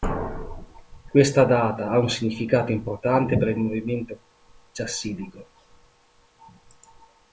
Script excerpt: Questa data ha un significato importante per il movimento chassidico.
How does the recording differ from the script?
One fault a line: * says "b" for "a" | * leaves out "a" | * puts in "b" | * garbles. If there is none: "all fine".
all fine